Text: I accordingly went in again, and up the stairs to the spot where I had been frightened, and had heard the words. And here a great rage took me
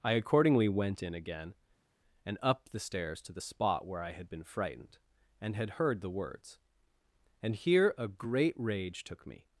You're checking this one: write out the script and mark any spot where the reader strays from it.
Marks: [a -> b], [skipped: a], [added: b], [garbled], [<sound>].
I accordingly went in again, and up the stairs to the spot where I had been frightened, and had heard the words. And here a great rage took me